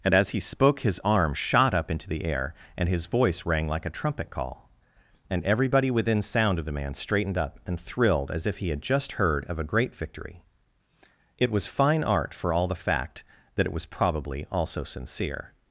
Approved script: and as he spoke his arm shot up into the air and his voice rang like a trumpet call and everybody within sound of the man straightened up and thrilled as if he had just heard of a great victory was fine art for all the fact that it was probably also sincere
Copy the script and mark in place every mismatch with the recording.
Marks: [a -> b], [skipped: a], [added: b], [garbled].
and as he spoke his arm shot up into the air and his voice rang like a trumpet call and everybody within sound of the man straightened up and thrilled as if he had just heard of a great victory [added: it] was fine art for all the fact that it was probably also sincere